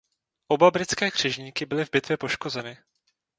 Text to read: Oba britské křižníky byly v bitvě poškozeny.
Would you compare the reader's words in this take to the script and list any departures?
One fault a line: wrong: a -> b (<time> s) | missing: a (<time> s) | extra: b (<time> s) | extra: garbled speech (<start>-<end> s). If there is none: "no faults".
no faults